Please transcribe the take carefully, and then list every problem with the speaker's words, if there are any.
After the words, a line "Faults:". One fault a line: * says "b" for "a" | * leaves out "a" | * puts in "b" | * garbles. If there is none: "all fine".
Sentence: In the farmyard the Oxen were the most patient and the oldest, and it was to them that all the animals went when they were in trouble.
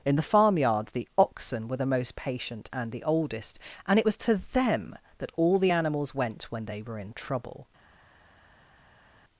In the farmyard the Oxen were the most patient and the oldest, and it was to them that all the animals went when they were in trouble.
Faults:
all fine